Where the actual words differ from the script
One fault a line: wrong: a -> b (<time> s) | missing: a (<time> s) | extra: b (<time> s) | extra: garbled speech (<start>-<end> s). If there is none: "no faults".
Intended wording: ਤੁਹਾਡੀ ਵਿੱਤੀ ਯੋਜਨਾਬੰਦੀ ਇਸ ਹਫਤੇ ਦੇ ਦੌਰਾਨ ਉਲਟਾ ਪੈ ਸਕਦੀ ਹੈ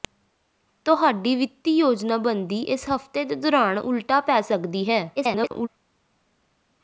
extra: garbled speech (5.2-5.7 s)